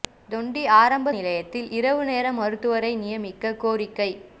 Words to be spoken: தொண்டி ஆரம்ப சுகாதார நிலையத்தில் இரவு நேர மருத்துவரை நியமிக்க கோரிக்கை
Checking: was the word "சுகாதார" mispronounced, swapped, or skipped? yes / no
yes